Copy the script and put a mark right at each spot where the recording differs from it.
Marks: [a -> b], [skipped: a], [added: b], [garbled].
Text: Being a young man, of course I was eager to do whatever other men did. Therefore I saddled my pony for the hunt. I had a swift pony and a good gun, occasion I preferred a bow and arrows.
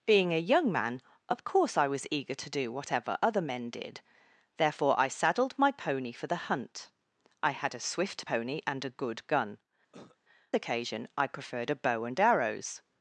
Being a young man, of course I was eager to do whatever other men did. Therefore I saddled my pony for the hunt. I had a swift pony and a good gun, occasion I preferred a bow and arrows.